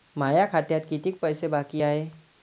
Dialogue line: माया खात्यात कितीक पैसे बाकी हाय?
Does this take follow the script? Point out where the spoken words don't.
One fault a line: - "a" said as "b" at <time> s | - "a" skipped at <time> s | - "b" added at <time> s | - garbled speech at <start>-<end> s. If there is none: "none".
none